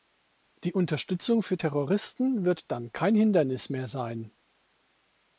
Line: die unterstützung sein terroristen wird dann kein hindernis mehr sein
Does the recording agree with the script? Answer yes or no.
no